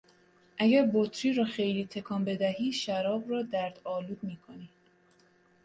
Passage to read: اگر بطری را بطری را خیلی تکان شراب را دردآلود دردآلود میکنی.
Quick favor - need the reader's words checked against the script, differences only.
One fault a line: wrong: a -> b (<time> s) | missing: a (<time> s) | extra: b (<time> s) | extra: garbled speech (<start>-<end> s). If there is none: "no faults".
missing: بطری را (1.4 s)
extra: بدهی (2.2 s)
missing: دردآلود (4.2 s)